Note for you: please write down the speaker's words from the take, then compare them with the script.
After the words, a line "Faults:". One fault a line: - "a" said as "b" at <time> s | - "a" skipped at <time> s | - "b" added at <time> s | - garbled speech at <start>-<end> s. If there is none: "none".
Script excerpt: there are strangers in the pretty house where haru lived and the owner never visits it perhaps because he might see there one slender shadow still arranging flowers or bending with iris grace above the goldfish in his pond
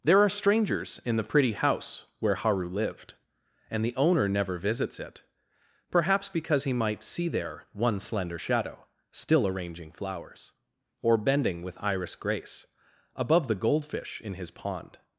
there are strangers in the pretty house where haru lived and the owner never visits it perhaps because he might see there one slender shadow still arranging flowers or bending with iris grace above the goldfish in his pond
Faults:
none